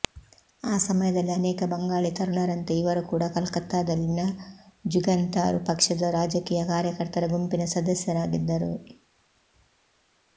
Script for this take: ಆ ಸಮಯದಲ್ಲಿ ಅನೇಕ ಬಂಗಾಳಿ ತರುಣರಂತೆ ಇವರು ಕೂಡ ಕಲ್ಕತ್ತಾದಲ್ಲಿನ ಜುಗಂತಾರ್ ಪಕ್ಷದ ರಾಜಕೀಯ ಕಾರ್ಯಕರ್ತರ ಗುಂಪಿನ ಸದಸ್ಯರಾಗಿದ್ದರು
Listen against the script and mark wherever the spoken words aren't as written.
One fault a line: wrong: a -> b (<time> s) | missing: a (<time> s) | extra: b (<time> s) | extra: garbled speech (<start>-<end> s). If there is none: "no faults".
no faults